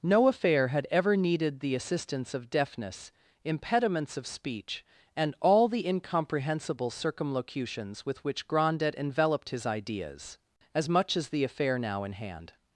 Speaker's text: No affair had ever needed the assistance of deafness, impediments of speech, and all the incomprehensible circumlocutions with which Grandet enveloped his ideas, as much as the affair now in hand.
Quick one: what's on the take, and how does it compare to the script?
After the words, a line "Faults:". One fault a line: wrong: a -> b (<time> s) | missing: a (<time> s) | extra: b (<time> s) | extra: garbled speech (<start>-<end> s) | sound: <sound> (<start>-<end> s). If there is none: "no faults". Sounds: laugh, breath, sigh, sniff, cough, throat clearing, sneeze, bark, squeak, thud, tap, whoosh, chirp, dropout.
No affair had ever needed the assistance of deafness, impediments of speech, and all the incomprehensible circumlocutions with which Grandet enveloped his ideas, as much as the affair now in hand.
Faults:
no faults